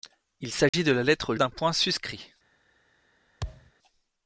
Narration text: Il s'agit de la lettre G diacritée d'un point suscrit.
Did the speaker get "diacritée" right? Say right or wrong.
wrong